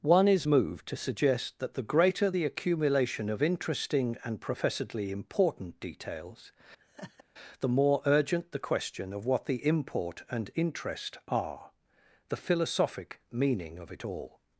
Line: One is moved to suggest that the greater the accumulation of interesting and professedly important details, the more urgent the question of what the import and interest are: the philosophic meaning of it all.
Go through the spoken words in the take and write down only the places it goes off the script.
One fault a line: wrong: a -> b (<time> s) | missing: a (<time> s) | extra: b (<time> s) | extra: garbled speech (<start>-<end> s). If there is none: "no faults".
no faults